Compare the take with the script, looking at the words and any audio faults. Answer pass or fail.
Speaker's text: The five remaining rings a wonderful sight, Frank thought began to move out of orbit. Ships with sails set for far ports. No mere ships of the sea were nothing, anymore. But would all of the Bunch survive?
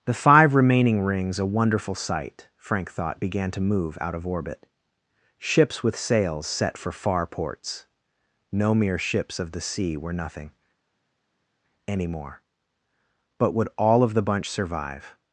pass